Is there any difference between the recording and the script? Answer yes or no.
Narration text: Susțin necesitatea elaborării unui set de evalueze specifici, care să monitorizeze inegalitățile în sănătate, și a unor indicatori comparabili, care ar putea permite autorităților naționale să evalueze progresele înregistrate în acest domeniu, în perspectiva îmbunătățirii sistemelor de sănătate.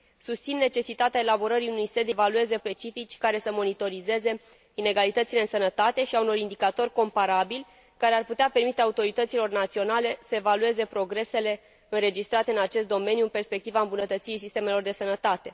no